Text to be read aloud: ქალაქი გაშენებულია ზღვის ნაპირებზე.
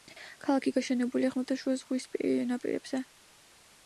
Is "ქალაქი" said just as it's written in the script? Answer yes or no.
yes